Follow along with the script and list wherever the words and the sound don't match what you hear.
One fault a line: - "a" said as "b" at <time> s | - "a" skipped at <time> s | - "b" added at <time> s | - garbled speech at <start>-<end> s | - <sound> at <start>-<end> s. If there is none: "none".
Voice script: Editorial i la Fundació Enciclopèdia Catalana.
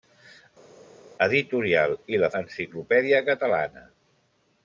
- "Fundació" skipped at 2.3 s